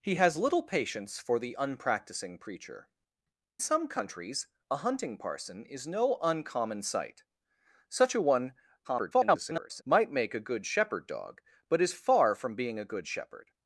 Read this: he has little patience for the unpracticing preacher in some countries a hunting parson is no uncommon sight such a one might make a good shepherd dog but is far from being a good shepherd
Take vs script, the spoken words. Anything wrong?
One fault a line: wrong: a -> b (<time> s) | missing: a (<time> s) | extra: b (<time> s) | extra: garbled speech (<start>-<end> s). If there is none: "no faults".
missing: in (2.9 s)
extra: garbled speech (8.8-9.8 s)